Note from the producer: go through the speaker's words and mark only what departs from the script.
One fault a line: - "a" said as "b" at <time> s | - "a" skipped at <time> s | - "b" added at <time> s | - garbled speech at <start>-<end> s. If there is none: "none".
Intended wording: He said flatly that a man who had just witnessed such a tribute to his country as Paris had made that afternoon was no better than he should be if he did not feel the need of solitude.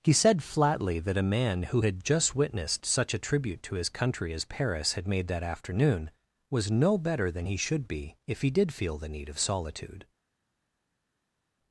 - "not" skipped at 8.7 s